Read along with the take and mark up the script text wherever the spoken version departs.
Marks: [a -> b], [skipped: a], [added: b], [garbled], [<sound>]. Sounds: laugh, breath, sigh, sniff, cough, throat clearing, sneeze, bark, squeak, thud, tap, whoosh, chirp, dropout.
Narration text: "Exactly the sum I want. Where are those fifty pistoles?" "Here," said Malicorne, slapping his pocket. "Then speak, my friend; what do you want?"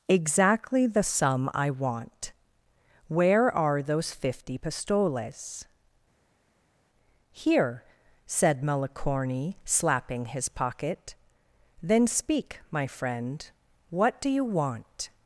"Exactly the sum I want. Where are those fifty pistoles?" "Here," said Malicorne, slapping his pocket. "Then speak, my friend; what do you want?"